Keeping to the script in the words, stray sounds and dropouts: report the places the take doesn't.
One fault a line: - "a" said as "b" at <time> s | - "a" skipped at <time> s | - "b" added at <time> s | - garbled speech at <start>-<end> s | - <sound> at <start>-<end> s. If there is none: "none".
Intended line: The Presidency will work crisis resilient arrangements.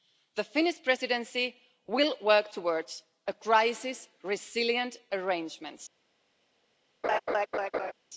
- "Finnish" added at 0.4 s
- "towards" added at 2.5 s
- laugh at 7.0-7.9 s